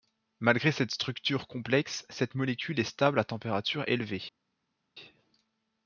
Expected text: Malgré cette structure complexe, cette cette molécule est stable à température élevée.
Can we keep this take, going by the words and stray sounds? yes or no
no